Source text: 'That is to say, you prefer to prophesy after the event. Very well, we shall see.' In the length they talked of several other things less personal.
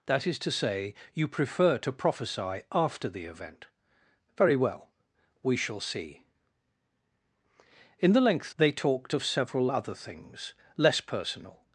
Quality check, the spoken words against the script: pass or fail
pass